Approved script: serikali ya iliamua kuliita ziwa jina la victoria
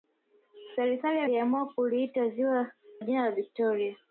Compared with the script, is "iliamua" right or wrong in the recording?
right